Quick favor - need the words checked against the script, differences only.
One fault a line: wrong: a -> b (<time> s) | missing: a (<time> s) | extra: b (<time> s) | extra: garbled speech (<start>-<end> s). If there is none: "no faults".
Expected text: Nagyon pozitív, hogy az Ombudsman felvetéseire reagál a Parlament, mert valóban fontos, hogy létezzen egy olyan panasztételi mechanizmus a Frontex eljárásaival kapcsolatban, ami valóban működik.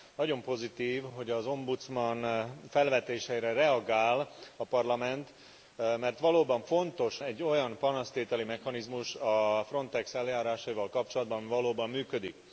missing: hogy létezzen (7.2 s)